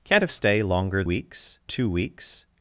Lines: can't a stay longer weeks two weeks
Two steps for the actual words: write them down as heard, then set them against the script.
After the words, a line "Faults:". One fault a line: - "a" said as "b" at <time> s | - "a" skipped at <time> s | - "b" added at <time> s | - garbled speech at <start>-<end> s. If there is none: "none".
can't a stay longer weeks two weeks
Faults:
none